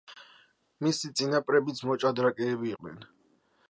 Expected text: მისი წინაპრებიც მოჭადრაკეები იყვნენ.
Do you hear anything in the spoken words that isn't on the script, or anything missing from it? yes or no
no